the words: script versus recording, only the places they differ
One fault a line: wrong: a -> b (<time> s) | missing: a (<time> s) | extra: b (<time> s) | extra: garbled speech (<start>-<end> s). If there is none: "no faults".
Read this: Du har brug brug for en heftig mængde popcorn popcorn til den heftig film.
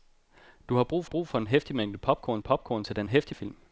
no faults